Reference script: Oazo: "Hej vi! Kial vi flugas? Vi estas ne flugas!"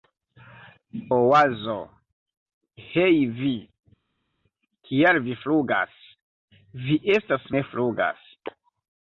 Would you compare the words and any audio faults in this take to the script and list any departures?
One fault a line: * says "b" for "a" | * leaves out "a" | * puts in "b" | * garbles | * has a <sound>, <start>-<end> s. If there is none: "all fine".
all fine